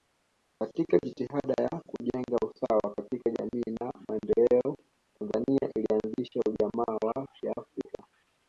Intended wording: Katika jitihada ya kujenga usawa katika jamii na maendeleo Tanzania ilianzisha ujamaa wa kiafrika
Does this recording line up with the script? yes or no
yes